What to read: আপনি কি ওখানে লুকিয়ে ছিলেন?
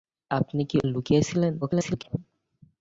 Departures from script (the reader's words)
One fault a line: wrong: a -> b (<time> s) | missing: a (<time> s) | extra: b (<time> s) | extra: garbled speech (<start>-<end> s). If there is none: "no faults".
missing: ওখানে (0.8 s)
extra: garbled speech (1.6-2.2 s)